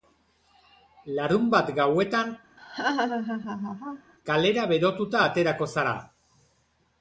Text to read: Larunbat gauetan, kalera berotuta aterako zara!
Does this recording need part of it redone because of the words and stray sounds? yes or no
yes